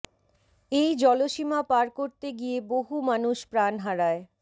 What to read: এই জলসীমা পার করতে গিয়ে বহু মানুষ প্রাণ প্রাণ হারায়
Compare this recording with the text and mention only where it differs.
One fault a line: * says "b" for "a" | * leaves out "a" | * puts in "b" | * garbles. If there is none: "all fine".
* leaves out "প্রাণ"